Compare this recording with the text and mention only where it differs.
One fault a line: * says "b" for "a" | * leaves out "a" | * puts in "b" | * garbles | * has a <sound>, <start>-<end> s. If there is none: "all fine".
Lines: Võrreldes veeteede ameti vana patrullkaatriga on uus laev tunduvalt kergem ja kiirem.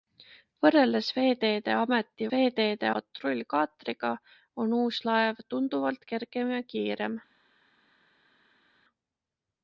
* says "veeteede" for "vana"